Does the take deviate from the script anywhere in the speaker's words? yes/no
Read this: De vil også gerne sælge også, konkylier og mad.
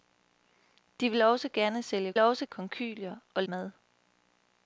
no